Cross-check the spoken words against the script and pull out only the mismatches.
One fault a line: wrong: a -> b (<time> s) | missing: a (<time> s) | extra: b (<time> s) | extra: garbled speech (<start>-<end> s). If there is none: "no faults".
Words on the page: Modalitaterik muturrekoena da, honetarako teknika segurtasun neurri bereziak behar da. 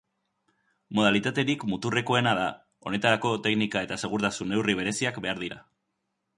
extra: eta (3.9 s)
wrong: da -> dira (5.4 s)